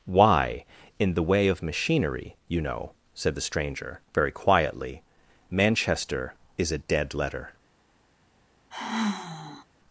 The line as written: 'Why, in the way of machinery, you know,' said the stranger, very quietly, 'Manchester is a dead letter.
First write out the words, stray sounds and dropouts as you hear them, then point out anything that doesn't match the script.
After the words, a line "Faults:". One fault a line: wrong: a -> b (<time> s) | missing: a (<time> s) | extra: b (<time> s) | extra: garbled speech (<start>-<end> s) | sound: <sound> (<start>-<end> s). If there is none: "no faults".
'Why, in the way of machinery, you know,' said the stranger, very quietly, 'Manchester is a dead letter.
Faults:
sound: sigh (8.7-9.7 s)